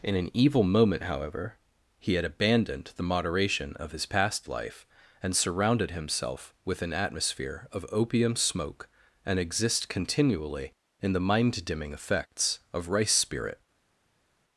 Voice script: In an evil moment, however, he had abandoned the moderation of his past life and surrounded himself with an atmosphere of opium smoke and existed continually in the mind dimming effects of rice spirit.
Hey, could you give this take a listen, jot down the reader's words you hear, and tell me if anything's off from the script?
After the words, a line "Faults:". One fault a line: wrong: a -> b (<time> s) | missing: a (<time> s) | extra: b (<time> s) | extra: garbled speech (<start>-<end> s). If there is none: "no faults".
In an evil moment, however, he had abandoned the moderation of his past life and surrounded himself with an atmosphere of opium smoke and exist continually in the mind dimming effects of rice spirit.
Faults:
wrong: existed -> exist (9.4 s)